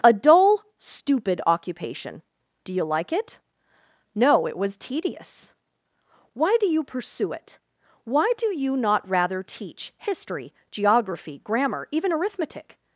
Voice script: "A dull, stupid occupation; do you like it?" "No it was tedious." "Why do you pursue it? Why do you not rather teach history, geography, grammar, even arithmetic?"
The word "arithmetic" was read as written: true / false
true